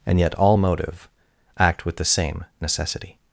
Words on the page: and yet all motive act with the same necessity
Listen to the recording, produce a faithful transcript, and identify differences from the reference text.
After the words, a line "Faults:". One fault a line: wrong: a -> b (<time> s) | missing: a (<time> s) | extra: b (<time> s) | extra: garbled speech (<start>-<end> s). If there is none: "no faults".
and yet all motive act with the same necessity
Faults:
no faults